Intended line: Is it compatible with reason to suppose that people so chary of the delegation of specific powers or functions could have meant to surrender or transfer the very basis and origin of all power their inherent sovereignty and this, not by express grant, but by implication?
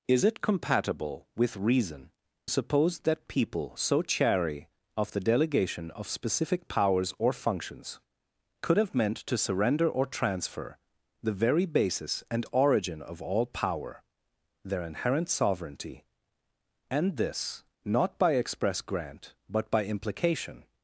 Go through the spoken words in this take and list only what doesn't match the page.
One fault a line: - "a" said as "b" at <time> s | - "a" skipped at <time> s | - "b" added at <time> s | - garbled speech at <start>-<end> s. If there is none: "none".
- "to" skipped at 2.1 s